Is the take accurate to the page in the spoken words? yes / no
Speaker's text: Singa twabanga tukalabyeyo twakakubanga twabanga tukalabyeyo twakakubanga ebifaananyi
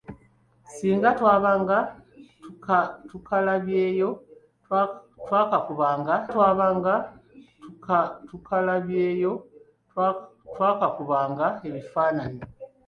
yes